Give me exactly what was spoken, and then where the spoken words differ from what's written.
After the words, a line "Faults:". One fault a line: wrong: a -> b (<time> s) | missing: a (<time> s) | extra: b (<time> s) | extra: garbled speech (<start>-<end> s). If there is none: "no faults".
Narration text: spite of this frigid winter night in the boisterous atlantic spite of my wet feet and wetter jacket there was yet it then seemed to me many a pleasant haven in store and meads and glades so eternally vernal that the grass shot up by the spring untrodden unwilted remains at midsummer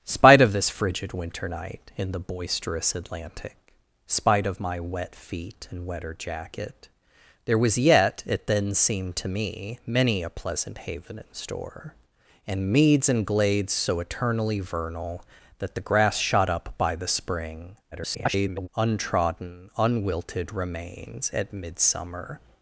spite of this frigid winter night in the boisterous atlantic spite of my wet feet and wetter jacket there was yet it then seemed to me many a pleasant haven in store and meads and glades so eternally vernal that the grass shot up by the spring [garbled] untrodden unwilted remains at midsummer
Faults:
extra: garbled speech (17.9-18.7 s)